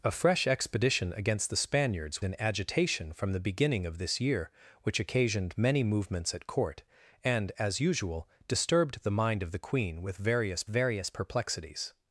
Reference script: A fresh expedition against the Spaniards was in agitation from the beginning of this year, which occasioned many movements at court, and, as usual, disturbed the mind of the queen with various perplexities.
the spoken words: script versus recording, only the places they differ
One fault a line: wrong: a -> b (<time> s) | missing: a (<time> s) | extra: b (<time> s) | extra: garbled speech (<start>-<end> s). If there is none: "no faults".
missing: was (2.2 s)
extra: various (10.7 s)